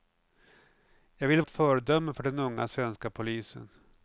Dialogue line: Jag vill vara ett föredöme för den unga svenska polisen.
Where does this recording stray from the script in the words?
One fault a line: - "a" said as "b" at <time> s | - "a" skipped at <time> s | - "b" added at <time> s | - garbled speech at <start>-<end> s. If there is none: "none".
- "vara" skipped at 1.4 s